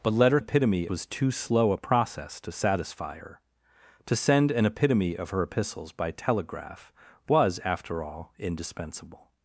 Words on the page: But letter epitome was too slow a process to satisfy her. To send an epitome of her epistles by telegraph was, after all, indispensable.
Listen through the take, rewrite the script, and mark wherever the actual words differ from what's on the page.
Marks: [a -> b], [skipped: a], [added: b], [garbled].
But letter epitome was too slow a process to satisfy her. To send an epitome of her epistles by telegraph was, after all, indispensable.